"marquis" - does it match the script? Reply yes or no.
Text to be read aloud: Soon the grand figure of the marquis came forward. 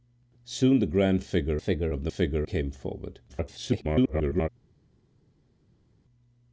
no